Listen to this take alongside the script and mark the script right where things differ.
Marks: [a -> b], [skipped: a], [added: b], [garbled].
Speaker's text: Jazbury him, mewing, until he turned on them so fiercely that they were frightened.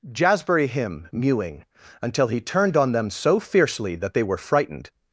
Jazbury him, mewing, until he turned on them so fiercely that they were frightened.